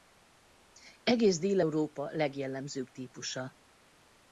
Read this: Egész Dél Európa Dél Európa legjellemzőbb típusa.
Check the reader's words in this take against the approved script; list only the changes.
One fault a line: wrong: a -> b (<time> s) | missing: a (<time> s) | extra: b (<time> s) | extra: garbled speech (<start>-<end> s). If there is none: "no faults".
missing: Dél Európa (2.1 s)